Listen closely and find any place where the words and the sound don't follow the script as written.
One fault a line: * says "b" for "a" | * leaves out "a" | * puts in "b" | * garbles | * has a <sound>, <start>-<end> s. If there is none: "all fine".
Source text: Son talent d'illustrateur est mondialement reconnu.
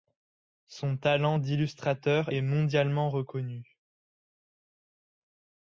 all fine